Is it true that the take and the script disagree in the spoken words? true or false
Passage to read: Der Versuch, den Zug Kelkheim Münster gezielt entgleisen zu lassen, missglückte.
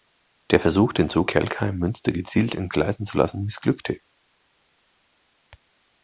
false